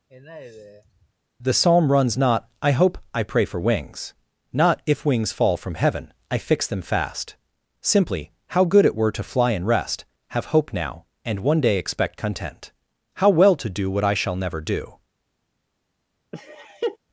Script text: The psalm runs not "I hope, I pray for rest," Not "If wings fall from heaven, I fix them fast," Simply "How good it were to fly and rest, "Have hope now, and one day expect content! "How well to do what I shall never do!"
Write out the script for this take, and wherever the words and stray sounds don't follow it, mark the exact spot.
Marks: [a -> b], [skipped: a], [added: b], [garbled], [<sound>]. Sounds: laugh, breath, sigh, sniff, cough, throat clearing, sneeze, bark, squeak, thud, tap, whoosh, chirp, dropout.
[sigh] The psalm runs not "I hope, I pray for [rest," -> wings] Not "If wings fall from heaven, I fix them fast," Simply "How good it were to fly and rest, "Have hope now, and one day expect content! "How well to do what I shall never do!" [laugh]